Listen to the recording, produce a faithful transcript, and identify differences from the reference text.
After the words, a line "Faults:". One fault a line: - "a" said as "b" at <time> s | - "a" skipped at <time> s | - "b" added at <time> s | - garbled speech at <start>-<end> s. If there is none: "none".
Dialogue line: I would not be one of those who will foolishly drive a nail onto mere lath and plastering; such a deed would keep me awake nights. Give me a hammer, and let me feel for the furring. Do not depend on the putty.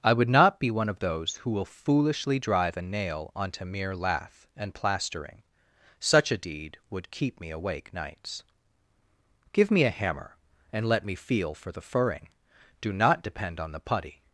I would not be one of those who will foolishly drive a nail onto mere lath and plastering; such a deed would keep me awake nights. Give me a hammer, and let me feel for the furring. Do not depend on the putty.
Faults:
none